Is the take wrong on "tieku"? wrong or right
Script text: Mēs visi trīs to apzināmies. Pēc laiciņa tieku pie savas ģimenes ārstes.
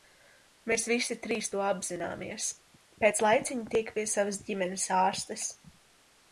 right